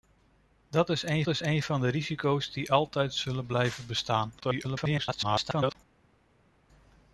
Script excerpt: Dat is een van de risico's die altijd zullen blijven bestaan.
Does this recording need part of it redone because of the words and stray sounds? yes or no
yes